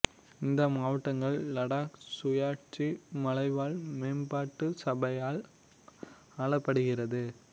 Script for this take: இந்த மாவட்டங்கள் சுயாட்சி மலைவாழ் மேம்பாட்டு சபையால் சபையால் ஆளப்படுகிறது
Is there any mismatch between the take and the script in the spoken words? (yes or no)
yes